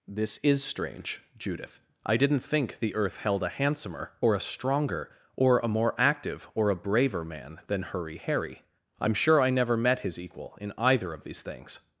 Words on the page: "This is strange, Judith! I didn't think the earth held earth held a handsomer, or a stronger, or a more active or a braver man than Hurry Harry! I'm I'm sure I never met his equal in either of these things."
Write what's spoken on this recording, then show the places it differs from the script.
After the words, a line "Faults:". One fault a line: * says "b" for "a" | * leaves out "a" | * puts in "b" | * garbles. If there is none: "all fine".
"This is strange, Judith! I didn't think the earth held a handsomer, or a stronger, or a more active or a braver man than Hurry Harry! I'm sure I never met his equal in either of these things."
Faults:
* leaves out "earth held"
* leaves out "I'm"